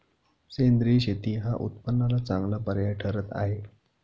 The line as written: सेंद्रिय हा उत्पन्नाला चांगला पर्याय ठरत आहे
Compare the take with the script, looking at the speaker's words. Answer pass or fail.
fail